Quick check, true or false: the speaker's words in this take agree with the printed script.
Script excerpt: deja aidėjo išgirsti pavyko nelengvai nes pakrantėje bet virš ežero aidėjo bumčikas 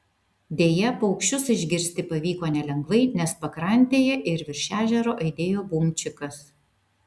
false